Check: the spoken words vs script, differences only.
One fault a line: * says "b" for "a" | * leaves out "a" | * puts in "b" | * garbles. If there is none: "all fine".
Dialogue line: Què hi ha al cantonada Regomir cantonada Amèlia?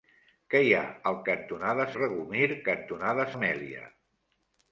all fine